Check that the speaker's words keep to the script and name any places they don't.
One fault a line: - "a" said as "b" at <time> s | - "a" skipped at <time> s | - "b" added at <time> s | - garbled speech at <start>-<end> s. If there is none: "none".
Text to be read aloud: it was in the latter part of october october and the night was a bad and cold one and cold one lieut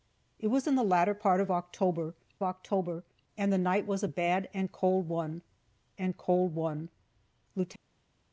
none